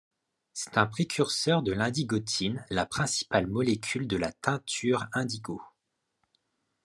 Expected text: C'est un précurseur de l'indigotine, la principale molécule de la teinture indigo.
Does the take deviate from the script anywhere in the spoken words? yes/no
no